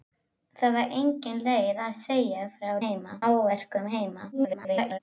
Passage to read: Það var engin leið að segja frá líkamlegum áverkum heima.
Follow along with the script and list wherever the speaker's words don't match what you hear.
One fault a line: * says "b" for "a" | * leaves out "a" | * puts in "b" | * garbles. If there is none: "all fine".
* says "heima" for "líkamlegum"
* garbles